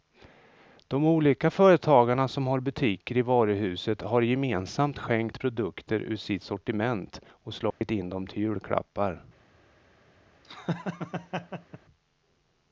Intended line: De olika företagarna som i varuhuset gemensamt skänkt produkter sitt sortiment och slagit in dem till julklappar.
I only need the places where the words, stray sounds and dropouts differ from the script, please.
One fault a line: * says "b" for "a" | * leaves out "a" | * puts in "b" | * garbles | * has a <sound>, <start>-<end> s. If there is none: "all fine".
* puts in "har butiker"
* puts in "har"
* puts in "ur"
* has a dropout, 7.7-7.8 s
* has a laugh, 10.4-11.8 s